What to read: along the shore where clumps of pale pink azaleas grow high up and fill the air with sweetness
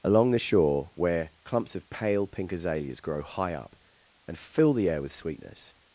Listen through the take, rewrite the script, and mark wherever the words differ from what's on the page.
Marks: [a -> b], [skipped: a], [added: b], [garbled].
along the shore where clumps of pale pink azaleas grow high up and fill the air with sweetness